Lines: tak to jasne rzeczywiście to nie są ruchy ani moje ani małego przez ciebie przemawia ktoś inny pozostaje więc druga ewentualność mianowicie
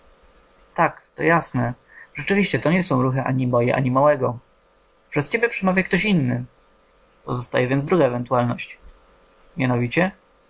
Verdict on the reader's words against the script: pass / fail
pass